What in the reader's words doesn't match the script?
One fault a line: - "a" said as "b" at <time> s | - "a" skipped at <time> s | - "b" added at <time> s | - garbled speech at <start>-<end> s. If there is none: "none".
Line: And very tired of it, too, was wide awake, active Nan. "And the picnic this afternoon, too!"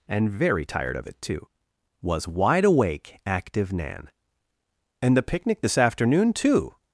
none